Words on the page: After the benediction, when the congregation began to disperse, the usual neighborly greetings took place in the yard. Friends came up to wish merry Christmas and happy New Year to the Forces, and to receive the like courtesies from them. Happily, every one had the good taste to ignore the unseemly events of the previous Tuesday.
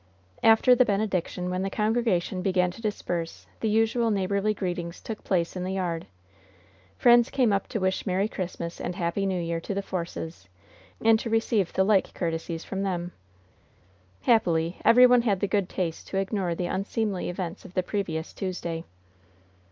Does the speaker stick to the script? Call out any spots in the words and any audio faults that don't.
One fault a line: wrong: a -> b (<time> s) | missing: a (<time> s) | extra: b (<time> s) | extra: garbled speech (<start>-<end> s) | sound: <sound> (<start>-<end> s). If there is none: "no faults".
no faults